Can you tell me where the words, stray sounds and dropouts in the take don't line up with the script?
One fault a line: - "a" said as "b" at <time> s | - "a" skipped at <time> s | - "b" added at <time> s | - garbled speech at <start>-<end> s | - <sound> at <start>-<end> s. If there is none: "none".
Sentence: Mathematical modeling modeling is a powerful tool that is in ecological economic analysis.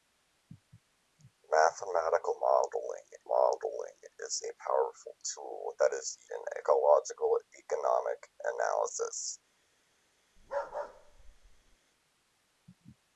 - bark at 10.4-11.8 s